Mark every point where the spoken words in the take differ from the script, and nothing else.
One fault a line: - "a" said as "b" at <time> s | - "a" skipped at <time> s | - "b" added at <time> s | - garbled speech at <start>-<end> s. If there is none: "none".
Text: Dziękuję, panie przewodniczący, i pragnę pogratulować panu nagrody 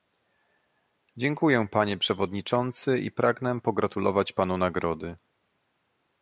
none